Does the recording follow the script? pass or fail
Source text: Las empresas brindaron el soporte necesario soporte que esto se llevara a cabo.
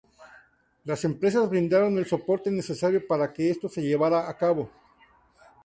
fail